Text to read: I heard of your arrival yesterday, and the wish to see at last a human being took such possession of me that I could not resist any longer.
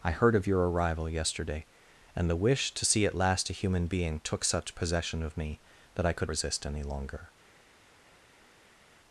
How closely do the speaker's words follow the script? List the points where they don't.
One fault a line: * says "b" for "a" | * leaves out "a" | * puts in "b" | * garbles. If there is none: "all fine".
* leaves out "not"